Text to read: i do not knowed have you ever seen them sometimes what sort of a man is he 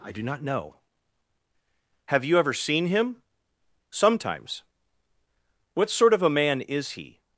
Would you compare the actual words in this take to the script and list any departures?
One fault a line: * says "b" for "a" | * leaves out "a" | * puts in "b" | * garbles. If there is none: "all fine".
* says "know" for "knowed"
* says "him" for "them"